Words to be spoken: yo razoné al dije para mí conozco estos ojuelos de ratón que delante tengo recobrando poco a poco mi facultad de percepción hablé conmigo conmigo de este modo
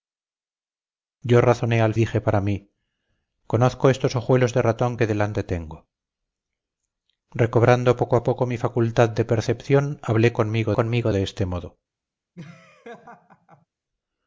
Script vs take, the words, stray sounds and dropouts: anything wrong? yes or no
yes